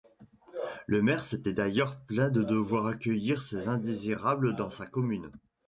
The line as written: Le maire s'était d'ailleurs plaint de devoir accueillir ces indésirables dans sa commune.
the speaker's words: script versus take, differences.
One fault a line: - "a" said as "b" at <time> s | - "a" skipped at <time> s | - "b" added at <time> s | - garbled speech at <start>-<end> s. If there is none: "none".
none